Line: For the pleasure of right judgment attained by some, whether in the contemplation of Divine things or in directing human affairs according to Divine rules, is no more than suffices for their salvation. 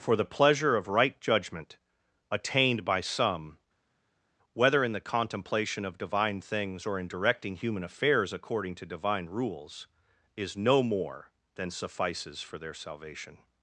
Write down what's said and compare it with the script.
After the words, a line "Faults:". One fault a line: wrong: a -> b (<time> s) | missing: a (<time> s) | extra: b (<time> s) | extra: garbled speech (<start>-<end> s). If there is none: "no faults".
For the pleasure of right judgment attained by some, whether in the contemplation of Divine things or in directing human affairs according to Divine rules, is no more than suffices for their salvation.
Faults:
no faults